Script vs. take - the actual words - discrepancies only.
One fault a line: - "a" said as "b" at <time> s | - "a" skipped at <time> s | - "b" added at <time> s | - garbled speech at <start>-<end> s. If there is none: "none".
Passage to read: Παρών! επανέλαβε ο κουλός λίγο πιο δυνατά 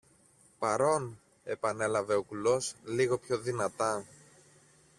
none